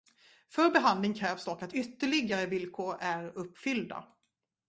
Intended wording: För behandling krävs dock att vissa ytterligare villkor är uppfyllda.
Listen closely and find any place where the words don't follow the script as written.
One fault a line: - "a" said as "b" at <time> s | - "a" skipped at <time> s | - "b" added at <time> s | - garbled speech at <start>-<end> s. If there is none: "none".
- "vissa" skipped at 1.7 s